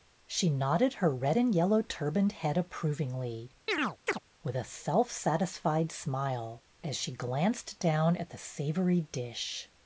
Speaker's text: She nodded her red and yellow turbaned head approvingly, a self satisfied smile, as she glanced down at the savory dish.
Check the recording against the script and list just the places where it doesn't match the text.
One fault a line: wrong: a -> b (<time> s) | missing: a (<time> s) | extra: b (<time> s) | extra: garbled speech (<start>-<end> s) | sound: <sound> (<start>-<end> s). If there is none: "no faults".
sound: chirp (3.7-4.2 s)
extra: with (4.4 s)